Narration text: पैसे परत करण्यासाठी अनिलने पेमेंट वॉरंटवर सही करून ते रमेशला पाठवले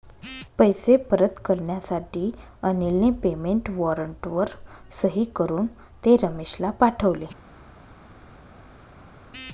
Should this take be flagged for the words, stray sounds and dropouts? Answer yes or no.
no